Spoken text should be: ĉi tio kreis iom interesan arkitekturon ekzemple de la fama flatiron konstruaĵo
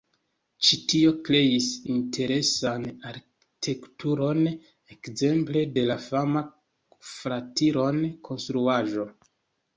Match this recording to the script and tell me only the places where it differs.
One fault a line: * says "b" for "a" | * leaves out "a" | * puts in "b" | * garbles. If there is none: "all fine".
* leaves out "iom"